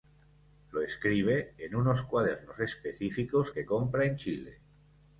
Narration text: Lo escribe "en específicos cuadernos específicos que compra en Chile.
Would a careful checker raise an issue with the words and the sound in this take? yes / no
yes